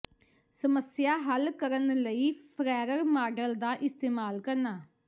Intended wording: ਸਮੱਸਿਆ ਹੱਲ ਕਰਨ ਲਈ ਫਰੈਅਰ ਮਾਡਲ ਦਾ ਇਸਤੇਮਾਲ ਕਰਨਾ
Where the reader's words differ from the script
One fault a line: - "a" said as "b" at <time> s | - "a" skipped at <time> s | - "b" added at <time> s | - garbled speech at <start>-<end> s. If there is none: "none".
none